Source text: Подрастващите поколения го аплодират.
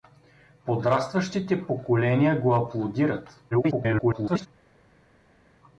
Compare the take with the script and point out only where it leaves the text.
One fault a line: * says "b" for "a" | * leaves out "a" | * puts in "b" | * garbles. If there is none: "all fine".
* garbles